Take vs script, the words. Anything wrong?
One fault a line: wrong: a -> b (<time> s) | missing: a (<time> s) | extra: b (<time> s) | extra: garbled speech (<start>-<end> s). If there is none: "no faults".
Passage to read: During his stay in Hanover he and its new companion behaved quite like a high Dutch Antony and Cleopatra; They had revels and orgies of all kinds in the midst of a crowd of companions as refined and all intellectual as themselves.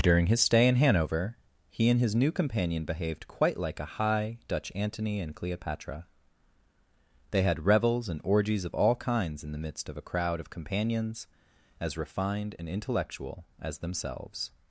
wrong: its -> his (2.0 s)
missing: all (12.7 s)